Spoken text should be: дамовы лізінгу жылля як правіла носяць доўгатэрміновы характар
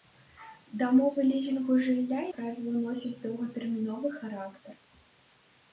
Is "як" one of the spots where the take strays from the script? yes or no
yes